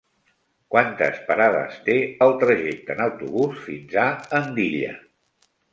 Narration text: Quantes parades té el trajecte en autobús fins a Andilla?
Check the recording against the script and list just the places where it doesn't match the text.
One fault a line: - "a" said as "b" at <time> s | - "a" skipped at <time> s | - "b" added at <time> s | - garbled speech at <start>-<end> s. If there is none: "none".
none